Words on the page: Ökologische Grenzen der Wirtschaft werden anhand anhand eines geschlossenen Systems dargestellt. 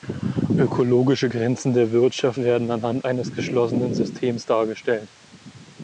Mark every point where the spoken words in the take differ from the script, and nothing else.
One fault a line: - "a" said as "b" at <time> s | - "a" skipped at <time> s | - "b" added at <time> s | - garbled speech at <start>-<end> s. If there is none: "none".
- "anhand" skipped at 3.0 s